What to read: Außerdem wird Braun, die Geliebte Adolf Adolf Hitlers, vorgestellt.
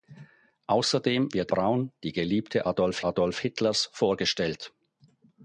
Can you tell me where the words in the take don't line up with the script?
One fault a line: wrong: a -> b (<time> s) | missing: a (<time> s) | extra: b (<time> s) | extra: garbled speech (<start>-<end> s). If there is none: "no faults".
no faults